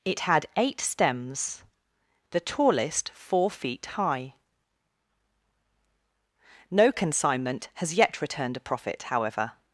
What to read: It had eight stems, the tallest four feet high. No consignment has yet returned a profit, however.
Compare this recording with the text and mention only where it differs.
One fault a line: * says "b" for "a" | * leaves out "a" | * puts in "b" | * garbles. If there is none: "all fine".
all fine